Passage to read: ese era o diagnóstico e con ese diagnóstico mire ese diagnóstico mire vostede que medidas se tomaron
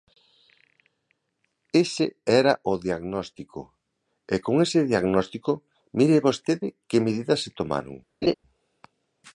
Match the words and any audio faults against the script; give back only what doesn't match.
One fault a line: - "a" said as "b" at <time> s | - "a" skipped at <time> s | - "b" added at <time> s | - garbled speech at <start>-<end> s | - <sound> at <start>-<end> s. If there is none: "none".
- "ese diagnóstico mire" skipped at 6.2 s
- laugh at 8.2-8.3 s